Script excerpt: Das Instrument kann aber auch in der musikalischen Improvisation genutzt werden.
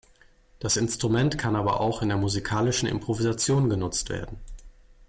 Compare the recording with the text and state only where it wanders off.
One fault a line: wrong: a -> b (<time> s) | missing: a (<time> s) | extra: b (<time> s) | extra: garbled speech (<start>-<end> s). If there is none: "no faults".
no faults